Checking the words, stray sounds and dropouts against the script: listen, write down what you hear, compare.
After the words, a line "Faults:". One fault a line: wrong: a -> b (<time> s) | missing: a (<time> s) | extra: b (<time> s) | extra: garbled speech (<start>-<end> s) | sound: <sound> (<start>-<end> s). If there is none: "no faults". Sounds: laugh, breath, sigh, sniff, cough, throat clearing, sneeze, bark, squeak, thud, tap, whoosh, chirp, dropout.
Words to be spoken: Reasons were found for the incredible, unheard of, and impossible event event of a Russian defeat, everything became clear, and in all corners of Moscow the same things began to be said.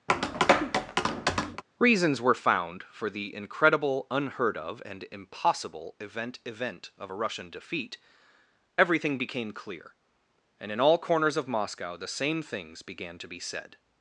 Reasons were found for the incredible, unheard of, and impossible event event of a Russian defeat, everything became clear, and in all corners of Moscow the same things began to be said.
Faults:
sound: tap (0.1-1.6 s)